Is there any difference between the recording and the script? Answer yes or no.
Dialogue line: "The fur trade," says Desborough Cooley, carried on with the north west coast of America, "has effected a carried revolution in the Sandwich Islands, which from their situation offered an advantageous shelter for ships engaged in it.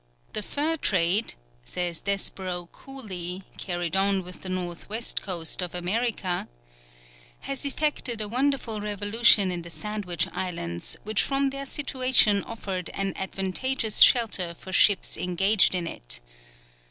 yes